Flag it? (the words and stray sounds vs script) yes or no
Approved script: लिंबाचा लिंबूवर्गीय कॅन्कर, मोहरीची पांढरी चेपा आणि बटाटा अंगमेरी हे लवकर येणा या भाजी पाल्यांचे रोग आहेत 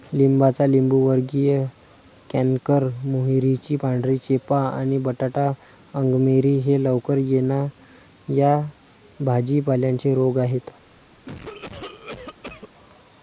yes